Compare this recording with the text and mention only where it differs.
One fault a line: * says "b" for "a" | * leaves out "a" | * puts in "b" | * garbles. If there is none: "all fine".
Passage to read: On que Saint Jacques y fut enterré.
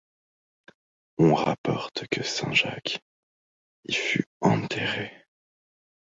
* puts in "rapporte"